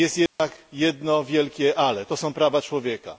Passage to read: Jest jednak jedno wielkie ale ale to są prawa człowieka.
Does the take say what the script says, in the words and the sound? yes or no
no